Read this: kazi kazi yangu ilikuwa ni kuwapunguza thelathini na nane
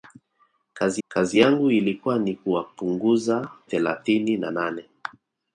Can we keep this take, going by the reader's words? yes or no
yes